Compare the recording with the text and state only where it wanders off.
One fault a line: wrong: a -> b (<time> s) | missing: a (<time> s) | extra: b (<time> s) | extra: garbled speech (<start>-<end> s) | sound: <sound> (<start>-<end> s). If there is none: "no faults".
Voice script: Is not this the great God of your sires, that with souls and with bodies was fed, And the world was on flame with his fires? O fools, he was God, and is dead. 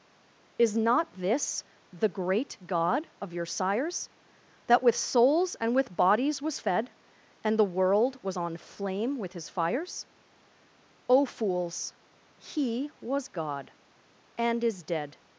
no faults